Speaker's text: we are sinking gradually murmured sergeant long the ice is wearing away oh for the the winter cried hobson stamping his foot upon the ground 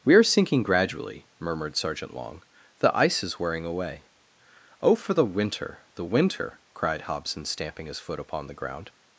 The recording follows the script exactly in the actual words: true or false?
false